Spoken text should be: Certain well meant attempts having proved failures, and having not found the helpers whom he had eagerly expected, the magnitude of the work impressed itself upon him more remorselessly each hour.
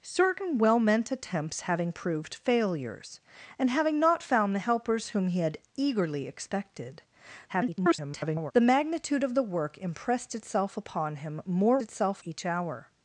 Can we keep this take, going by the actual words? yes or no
no